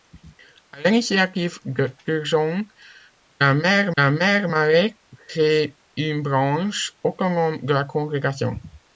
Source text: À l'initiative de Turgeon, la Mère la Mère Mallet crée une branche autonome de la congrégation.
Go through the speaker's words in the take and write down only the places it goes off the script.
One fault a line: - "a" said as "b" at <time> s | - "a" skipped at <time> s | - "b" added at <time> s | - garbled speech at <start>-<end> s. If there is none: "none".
none